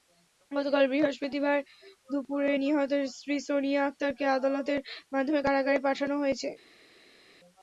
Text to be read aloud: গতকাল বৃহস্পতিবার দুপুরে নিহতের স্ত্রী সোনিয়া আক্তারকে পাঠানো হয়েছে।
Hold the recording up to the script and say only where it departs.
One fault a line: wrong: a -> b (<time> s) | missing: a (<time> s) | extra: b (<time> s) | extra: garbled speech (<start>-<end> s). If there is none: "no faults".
extra: আদালতের মাধ্যমে কারাগারে (4.4 s)